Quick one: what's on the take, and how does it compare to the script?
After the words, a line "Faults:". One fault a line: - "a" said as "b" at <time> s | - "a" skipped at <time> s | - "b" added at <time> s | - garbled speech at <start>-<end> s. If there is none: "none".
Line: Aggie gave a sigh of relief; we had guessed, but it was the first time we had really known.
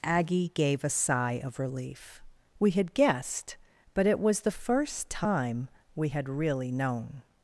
Aggie gave a sigh of relief; we had guessed, but it was the first time we had really known.
Faults:
none